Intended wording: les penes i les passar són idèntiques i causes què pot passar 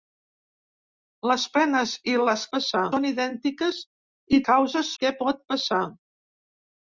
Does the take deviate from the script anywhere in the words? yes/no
no